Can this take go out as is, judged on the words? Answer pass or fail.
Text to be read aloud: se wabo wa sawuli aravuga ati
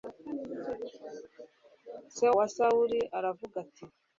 fail